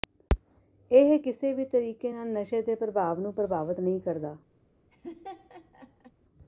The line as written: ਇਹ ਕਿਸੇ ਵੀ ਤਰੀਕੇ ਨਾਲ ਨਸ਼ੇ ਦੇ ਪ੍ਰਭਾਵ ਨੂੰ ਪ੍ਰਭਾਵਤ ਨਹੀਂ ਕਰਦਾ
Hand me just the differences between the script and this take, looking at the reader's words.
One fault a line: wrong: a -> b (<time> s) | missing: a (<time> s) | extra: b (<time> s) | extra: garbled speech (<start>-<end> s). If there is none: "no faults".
no faults